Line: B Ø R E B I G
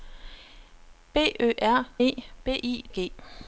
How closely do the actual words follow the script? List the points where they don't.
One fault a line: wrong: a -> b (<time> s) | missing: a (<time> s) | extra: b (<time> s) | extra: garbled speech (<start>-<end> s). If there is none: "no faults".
no faults